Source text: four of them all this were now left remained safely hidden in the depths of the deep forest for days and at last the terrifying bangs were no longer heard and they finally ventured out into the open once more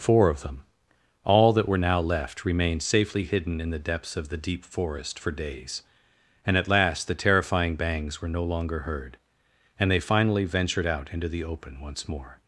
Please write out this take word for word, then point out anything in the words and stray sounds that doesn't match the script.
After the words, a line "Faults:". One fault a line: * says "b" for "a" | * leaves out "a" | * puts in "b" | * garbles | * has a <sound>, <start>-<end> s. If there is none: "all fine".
four of them all that were now left remained safely hidden in the depths of the deep forest for days and at last the terrifying bangs were no longer heard and they finally ventured out into the open once more
Faults:
* says "that" for "this"